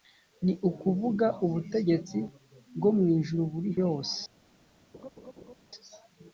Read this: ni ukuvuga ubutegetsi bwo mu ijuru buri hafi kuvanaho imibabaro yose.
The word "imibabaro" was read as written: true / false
false